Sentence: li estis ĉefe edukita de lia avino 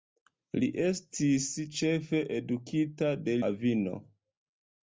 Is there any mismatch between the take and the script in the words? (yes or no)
yes